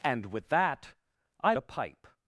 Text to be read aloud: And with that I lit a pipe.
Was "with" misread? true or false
false